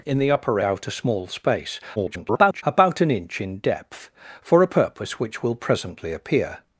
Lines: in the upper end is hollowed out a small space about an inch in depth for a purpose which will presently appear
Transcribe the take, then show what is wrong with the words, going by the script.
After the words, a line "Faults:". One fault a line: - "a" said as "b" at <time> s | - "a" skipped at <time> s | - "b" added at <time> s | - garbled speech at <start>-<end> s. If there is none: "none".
in the upper out a small space [garbled] about an inch in depth for a purpose which will presently appear
Faults:
- "end is hollowed" skipped at 0.6 s
- garbled speech at 2.0-2.6 s